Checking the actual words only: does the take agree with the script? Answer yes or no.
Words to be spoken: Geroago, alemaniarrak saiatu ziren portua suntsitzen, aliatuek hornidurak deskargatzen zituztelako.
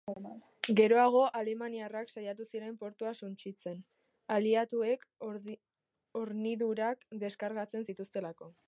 yes